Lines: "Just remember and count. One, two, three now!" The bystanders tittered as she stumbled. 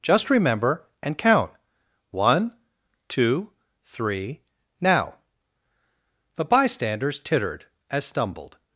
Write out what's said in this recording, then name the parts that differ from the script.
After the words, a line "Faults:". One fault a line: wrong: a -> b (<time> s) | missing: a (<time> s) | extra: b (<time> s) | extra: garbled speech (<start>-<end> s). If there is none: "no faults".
"Just remember and count. One, two, three now!" The bystanders tittered as stumbled.
Faults:
missing: she (8.0 s)